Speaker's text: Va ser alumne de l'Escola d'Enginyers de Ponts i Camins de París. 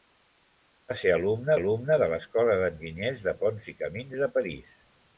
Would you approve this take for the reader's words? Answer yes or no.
no